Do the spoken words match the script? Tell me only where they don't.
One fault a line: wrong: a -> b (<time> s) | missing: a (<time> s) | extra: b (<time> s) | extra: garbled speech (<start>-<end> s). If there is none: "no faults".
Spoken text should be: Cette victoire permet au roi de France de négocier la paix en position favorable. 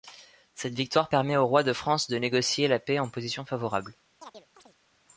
no faults